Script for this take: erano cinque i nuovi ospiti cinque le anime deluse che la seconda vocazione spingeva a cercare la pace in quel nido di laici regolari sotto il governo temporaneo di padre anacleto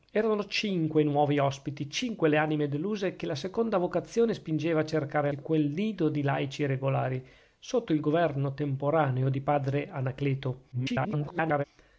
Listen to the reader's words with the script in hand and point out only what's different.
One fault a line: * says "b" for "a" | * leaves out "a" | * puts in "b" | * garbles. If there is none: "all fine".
* leaves out "la pace"
* garbles